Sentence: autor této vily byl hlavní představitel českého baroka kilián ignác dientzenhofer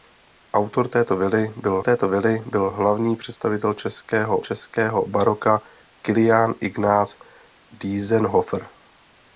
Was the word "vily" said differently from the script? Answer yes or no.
no